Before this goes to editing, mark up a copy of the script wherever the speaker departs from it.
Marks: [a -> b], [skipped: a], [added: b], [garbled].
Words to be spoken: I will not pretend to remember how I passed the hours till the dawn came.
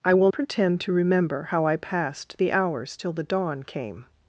I will [skipped: not] pretend to remember how I passed the hours till the dawn came.